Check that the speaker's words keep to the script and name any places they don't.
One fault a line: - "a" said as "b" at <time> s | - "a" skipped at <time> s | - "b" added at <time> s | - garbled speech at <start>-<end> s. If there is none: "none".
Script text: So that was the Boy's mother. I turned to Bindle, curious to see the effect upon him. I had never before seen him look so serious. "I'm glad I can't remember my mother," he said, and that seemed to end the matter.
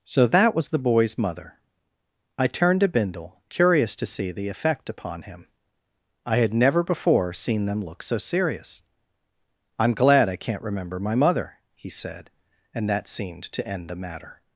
- "him" said as "them" at 7.7 s